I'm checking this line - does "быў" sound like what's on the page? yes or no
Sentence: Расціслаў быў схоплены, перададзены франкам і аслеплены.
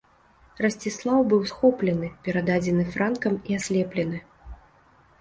yes